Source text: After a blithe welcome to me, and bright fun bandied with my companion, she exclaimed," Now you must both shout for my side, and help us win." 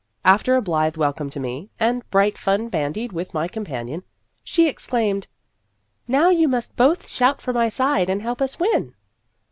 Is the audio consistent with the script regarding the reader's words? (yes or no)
yes